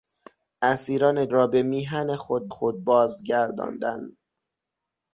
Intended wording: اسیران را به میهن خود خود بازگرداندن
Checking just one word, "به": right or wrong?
right